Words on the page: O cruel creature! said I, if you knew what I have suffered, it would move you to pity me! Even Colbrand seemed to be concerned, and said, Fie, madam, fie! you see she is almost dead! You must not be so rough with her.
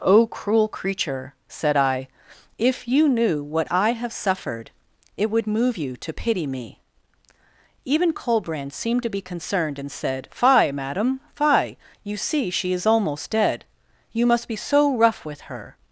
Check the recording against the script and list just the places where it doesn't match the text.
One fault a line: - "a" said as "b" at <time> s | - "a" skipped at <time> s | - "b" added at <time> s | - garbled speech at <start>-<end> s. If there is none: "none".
- "not" skipped at 14.5 s